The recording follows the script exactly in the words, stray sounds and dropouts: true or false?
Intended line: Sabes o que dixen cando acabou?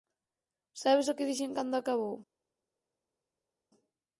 true